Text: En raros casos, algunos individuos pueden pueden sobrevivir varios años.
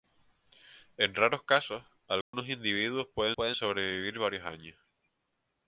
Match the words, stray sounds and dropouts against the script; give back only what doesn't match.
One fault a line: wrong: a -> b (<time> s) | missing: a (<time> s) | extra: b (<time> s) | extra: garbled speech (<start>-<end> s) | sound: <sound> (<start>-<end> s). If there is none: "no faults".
sound: dropout (2.2-2.3 s)